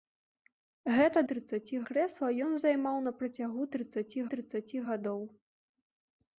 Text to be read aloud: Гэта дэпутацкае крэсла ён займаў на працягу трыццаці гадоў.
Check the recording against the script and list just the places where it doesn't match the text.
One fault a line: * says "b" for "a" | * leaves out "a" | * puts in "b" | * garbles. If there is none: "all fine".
* says "трыццаці" for "дэпутацкае"
* puts in "трыццаці"